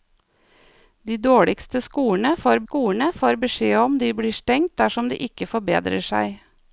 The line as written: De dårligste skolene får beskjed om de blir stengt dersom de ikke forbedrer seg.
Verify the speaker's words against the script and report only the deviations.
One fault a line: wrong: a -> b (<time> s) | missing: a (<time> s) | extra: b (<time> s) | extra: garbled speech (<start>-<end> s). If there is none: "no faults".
extra: skolene får (2.6 s)